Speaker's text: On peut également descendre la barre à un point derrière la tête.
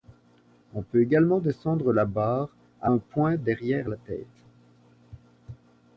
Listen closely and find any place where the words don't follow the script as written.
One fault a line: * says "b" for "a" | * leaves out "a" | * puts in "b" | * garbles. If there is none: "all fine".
all fine